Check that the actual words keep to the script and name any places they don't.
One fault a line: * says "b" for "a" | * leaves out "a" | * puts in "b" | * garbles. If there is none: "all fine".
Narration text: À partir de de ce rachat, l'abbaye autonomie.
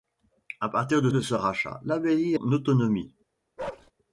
all fine